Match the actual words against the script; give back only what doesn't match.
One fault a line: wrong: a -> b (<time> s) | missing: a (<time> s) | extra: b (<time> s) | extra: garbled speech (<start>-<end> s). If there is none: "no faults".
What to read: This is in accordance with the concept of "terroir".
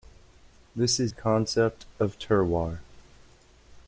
missing: in accordance with (1.1 s)